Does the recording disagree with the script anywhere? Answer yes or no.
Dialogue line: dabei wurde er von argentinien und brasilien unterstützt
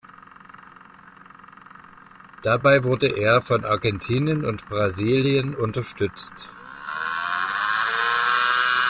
no